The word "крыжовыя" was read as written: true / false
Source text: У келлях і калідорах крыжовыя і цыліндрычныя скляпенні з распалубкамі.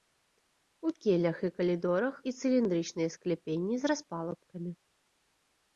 false